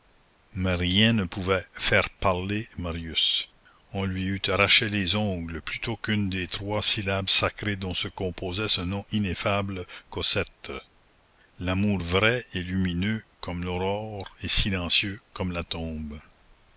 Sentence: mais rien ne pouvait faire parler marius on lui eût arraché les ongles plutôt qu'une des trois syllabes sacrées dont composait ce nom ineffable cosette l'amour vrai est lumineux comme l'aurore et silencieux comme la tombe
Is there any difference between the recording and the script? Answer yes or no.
yes